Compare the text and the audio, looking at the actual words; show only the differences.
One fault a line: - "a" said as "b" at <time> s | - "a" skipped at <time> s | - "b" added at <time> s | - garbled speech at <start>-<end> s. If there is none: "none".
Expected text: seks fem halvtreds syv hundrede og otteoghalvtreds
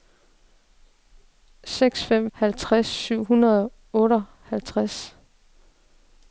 none